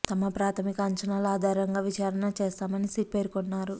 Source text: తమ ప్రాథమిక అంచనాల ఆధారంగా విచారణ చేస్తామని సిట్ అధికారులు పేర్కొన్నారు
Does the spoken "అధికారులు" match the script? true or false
false